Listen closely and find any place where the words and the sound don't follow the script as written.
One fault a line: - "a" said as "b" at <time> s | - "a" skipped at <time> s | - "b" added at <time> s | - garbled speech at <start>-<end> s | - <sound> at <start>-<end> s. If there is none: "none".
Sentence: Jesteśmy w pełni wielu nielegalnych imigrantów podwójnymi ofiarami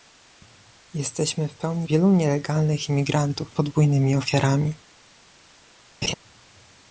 - laugh at 6.0-6.1 s